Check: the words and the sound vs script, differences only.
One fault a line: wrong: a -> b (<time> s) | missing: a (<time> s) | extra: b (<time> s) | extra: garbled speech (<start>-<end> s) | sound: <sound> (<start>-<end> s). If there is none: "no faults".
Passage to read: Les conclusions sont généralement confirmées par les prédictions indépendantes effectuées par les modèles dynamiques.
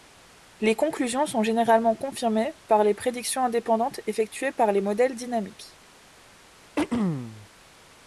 sound: throat clearing (6.8-7.5 s)